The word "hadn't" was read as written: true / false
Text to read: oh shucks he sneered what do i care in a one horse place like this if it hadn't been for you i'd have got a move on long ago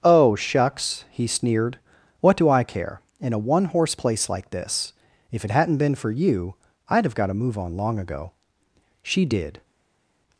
true